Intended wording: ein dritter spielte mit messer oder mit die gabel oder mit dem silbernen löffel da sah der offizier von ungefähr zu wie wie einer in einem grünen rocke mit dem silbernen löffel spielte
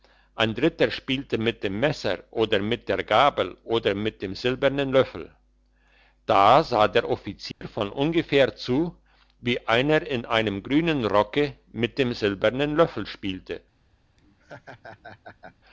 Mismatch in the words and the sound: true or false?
true